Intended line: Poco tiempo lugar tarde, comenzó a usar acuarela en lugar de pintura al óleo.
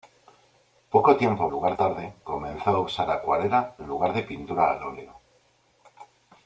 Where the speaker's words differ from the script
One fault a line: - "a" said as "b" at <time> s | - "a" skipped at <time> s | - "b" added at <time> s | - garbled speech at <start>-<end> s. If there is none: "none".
none